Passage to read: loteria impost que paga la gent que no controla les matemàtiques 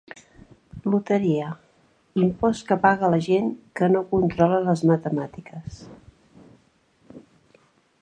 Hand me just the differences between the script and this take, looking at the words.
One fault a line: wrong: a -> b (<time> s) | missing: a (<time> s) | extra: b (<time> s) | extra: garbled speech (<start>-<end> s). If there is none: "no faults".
no faults